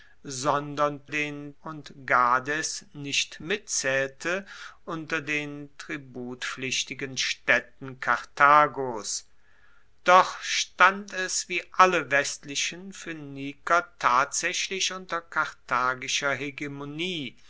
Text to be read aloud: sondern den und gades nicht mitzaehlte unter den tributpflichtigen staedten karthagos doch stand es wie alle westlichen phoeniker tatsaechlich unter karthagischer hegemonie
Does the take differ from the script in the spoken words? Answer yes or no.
no